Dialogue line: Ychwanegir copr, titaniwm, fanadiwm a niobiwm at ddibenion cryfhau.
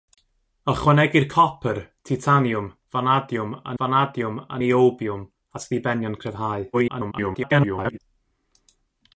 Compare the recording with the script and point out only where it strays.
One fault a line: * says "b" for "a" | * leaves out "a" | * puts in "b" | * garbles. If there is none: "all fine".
* puts in "fanadiwm a"
* garbles